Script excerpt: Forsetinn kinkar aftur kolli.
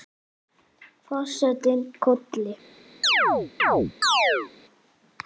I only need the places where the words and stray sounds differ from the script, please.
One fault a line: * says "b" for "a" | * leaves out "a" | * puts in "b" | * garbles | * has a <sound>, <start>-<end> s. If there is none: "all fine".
* leaves out "kinkar aftur"
* has a chirp, 3.0-4.5 s